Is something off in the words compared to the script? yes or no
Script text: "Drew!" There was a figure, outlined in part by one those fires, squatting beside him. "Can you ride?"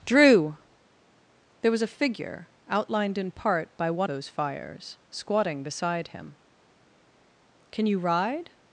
no